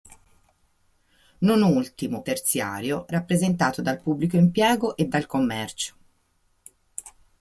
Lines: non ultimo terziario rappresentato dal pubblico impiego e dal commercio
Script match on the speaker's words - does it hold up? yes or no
yes